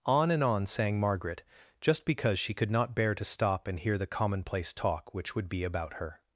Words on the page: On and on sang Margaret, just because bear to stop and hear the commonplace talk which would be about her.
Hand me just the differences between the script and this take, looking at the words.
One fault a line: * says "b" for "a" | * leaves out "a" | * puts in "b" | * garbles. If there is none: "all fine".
* puts in "she could not"